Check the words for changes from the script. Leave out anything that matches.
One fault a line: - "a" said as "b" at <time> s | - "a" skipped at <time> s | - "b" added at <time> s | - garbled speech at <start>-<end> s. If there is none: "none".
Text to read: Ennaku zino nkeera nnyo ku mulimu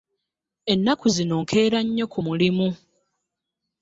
none